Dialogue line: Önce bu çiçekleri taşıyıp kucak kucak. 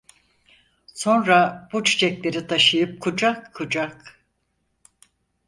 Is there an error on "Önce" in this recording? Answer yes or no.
yes